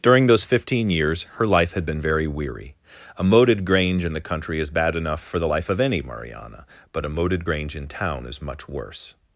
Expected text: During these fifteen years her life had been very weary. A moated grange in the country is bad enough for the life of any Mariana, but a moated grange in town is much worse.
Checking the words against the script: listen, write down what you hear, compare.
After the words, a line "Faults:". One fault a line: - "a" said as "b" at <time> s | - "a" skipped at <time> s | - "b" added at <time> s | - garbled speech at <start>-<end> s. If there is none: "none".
During those fifteen years her life had been very weary. A moated grange in the country is bad enough for the life of any Mariana, but a moated grange in town is much worse.
Faults:
- "these" said as "those" at 0.2 s